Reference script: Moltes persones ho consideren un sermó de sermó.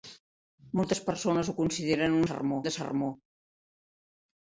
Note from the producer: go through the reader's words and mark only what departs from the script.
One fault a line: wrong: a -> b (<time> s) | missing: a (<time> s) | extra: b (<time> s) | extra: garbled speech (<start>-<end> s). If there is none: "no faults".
no faults